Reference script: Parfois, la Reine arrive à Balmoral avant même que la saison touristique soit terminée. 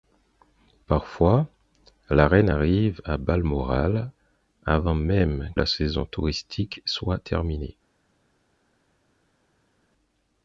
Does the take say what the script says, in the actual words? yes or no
no